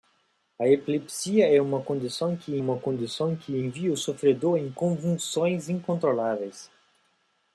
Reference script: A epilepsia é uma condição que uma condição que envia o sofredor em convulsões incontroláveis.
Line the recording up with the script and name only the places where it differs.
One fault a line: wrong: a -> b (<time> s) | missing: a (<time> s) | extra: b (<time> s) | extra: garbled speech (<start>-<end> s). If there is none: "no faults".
no faults